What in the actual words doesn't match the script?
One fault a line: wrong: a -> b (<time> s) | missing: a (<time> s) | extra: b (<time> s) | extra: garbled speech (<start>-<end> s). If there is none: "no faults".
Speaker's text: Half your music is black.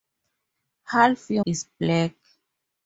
missing: music (1.4 s)